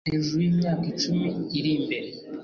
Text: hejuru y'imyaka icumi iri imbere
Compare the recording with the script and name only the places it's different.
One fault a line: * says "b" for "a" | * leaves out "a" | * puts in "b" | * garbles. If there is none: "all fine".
all fine